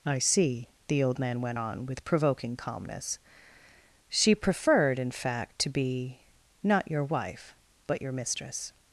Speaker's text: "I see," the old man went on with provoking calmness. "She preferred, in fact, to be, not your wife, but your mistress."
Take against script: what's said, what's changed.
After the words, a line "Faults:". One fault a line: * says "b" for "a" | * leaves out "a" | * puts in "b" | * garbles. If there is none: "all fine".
"I see," the old man went on with provoking calmness. "She preferred, in fact, to be, not your wife, but your mistress."
Faults:
all fine